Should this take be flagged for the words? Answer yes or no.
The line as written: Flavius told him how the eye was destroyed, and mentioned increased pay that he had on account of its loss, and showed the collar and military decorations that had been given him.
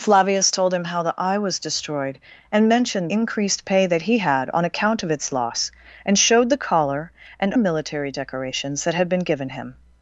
no